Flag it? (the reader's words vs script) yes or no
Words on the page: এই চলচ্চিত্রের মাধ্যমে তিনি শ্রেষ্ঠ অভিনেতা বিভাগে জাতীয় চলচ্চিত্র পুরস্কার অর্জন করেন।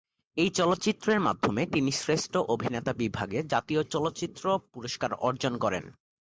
no